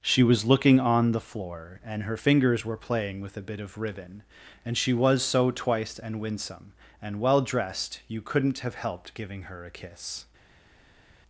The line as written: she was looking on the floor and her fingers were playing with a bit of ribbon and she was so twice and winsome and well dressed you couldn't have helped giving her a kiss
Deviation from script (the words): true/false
false